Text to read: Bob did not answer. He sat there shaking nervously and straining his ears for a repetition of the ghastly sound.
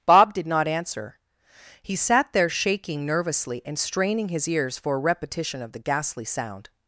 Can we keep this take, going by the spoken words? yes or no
yes